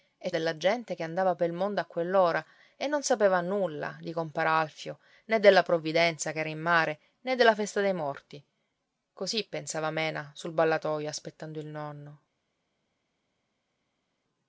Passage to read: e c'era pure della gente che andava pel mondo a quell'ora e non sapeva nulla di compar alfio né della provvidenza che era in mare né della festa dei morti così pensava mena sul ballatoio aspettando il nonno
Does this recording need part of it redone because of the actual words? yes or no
yes